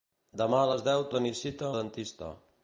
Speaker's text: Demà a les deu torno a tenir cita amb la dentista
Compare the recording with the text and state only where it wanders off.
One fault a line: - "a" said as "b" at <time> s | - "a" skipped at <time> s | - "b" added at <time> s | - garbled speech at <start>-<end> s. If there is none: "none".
- "torno" skipped at 1.0 s
- "amb" skipped at 1.7 s